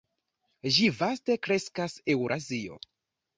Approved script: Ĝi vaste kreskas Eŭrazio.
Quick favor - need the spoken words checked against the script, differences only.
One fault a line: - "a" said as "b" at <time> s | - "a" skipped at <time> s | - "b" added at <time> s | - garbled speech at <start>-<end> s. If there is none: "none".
none